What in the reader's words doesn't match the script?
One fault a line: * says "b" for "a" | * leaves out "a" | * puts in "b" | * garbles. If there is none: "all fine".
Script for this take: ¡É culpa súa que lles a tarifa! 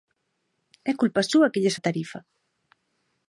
all fine